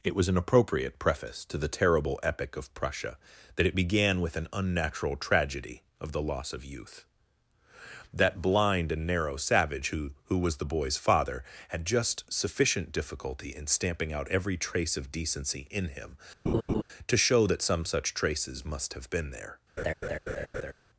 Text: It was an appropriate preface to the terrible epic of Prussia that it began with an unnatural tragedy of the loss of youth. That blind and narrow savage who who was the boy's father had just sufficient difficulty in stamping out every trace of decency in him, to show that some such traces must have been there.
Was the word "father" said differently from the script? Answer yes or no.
no